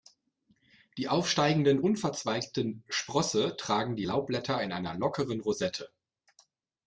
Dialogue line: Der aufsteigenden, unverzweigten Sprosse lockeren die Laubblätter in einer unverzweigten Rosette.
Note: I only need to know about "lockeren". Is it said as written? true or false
false